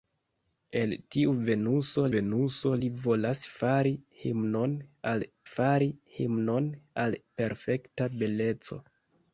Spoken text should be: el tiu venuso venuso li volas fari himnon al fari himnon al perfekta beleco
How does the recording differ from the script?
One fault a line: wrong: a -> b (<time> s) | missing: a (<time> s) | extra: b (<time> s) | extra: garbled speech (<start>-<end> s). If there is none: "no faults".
no faults